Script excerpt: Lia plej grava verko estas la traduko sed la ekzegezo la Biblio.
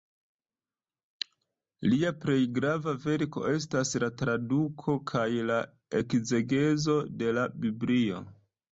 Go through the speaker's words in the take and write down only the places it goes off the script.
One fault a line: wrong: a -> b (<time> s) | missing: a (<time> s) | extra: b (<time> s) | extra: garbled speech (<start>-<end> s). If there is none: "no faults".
wrong: sed -> kaj (5.2 s)
extra: de (7.2 s)